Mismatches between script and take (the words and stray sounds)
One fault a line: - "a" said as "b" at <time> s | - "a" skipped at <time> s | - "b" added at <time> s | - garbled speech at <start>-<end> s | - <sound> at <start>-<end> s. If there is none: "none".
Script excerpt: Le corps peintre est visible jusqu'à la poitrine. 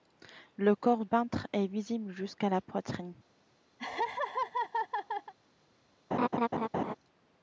- laugh at 3.8-5.3 s
- laugh at 6.1-7.0 s